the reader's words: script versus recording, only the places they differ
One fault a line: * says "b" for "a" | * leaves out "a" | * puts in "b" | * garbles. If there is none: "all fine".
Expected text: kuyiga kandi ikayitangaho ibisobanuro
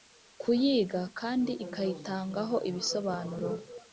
all fine